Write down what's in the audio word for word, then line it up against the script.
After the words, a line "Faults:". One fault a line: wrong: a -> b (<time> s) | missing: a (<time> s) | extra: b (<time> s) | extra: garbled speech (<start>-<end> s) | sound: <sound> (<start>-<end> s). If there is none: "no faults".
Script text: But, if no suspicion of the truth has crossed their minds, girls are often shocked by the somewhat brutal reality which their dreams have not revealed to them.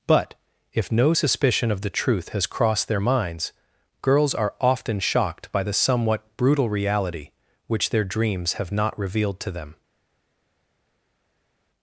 But, if no suspicion of the truth has crossed their minds, girls are often shocked by the somewhat brutal reality which their dreams have not revealed to them.
Faults:
no faults